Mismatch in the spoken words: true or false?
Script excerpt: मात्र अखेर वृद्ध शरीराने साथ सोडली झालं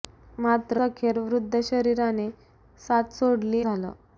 false